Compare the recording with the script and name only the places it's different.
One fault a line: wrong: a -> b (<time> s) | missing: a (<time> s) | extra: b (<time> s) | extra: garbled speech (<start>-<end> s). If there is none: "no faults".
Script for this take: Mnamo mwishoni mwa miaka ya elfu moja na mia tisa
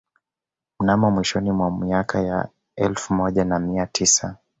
no faults